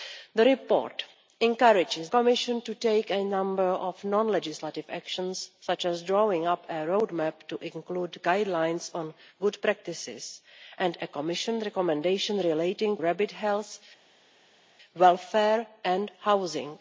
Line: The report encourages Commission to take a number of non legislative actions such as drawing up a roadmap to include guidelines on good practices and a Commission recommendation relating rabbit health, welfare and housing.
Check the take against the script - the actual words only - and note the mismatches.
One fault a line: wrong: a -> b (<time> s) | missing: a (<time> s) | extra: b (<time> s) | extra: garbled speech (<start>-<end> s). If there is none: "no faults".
no faults